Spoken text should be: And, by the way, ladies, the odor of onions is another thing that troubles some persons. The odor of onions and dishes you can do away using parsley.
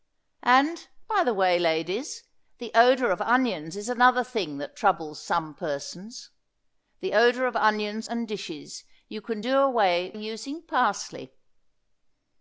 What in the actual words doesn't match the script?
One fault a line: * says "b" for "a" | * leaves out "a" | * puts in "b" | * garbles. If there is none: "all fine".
all fine